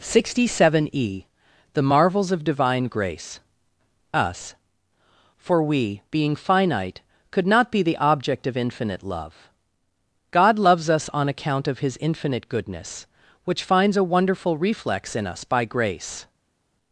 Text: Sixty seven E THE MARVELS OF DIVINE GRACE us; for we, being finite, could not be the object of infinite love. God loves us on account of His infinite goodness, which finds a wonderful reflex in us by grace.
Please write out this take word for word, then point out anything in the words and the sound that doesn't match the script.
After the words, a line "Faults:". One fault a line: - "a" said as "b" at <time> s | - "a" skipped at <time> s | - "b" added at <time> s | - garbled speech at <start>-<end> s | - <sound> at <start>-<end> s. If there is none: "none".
Sixty seven E THE MARVELS OF DIVINE GRACE us; for we, being finite, could not be the object of infinite love. God loves us on account of His infinite goodness, which finds a wonderful reflex in us by grace.
Faults:
none